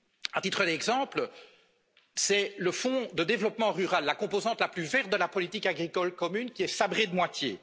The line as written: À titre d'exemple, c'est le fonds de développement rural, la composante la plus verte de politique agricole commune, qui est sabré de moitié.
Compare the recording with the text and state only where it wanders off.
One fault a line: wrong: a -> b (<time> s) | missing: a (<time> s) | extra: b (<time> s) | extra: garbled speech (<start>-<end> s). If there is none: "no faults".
extra: la (5.2 s)